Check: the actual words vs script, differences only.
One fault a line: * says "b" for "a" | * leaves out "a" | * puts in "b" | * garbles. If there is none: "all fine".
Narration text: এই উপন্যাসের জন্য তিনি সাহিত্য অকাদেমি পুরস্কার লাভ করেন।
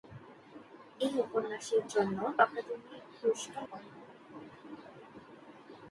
* leaves out "তিনি সাহিত্য"
* leaves out "লাভ"